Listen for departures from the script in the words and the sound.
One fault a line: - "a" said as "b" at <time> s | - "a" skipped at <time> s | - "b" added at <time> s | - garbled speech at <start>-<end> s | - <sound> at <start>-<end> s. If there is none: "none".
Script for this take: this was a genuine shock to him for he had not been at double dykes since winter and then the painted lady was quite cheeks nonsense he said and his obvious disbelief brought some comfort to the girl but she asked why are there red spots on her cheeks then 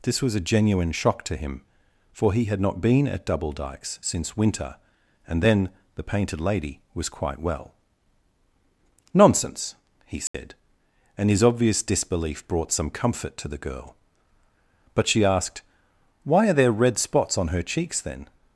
- "cheeks" said as "well" at 7.4 s
- dropout at 10.3-10.3 s